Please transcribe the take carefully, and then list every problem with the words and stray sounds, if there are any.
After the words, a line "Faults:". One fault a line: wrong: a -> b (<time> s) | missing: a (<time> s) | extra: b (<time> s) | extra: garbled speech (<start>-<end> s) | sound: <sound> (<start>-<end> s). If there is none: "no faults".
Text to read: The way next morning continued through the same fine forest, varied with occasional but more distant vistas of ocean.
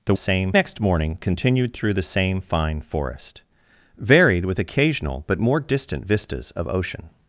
The same next morning continued through the same fine forest, varied with occasional but more distant vistas of ocean.
Faults:
wrong: way -> same (0.1 s)